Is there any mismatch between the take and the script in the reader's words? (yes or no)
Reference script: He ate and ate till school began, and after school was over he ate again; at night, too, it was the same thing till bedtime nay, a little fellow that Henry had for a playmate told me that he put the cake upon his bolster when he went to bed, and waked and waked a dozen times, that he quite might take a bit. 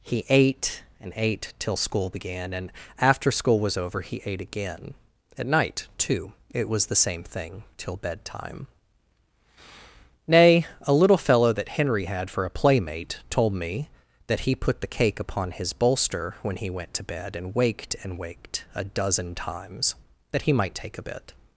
yes